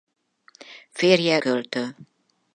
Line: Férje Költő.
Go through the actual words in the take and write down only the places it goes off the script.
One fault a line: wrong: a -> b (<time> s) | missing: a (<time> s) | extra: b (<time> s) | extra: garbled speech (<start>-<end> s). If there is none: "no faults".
no faults